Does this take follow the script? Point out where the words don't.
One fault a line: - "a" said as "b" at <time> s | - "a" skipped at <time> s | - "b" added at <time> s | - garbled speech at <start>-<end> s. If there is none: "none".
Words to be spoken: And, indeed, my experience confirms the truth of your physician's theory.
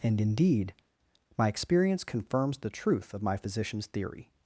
- "your" said as "my" at 3.2 s